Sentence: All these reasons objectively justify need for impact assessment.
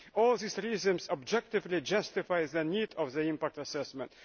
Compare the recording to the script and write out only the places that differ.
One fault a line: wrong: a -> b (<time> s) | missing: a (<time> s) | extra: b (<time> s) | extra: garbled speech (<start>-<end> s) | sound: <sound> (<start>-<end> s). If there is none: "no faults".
extra: the (2.5 s)
extra: the (3.1 s)